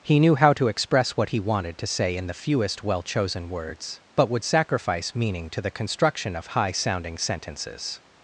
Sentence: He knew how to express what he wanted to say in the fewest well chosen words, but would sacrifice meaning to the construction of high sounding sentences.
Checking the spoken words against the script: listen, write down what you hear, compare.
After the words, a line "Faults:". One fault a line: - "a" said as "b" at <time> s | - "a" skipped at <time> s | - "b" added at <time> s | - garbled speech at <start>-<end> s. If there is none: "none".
He knew how to express what he wanted to say in the fewest well chosen words, but would sacrifice meaning to the construction of high sounding sentences.
Faults:
none